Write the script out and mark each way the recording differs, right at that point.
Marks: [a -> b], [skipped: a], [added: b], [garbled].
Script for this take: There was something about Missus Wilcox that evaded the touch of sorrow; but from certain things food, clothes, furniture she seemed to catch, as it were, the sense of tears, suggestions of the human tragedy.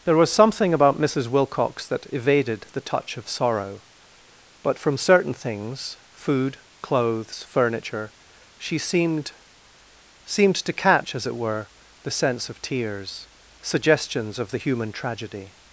There was something about Missus Wilcox that evaded the touch of sorrow; but from certain things food, clothes, furniture she seemed [added: seemed] to catch, as it were, the sense of tears, suggestions of the human tragedy.